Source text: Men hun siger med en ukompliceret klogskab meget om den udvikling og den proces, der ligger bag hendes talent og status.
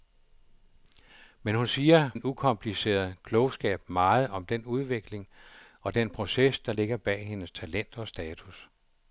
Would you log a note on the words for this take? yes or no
yes